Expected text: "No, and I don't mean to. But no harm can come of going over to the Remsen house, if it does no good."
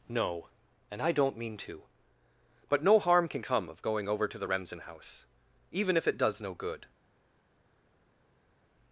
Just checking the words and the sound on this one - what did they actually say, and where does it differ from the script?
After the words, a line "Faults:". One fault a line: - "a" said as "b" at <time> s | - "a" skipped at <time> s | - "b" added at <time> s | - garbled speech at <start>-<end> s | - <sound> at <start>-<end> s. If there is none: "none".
"No, and I don't mean to. But no harm can come of going over to the Remsen house, even if it does no good."
Faults:
- "even" added at 5.7 s